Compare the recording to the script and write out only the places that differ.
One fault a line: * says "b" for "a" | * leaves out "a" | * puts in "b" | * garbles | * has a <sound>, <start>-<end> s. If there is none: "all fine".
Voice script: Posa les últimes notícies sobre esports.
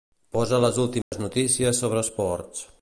* has a dropout, 1.0-1.1 s